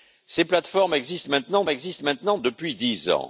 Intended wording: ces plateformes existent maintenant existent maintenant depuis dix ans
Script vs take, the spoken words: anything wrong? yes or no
no